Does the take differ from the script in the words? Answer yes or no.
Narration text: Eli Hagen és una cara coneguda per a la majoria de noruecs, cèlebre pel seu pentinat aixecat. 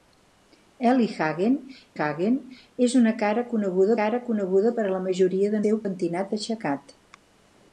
yes